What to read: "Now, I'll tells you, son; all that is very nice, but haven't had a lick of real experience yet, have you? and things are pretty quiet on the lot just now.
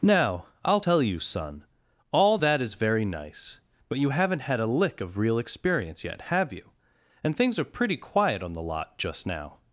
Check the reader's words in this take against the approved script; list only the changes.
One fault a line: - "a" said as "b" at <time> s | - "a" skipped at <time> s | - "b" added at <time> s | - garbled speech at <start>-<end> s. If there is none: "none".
- "tells" said as "tell" at 0.8 s
- "you" added at 4.0 s